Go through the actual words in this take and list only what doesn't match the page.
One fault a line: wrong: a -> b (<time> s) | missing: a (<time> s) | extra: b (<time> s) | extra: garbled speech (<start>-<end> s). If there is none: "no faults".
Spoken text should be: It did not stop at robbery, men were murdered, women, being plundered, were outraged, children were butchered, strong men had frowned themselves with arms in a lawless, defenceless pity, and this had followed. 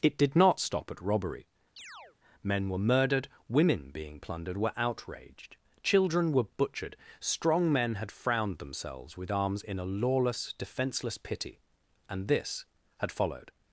no faults